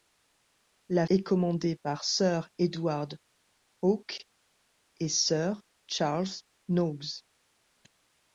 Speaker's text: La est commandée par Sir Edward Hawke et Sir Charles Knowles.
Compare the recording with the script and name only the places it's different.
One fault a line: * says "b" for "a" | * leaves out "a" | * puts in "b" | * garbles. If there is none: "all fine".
all fine